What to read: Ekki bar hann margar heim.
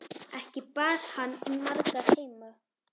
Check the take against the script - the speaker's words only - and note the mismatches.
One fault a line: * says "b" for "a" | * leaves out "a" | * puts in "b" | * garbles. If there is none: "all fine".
all fine